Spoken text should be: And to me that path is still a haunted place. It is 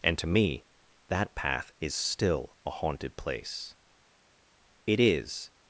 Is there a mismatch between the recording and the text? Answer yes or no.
no